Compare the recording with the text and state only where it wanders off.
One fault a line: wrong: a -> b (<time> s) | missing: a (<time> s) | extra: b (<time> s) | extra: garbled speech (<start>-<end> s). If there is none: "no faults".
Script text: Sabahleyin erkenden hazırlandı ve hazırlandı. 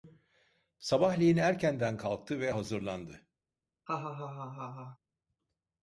wrong: hazırlandı -> kalktı (2.0 s)